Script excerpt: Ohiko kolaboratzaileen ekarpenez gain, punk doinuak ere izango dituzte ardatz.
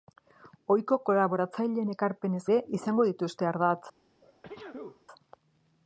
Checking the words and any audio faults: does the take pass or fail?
fail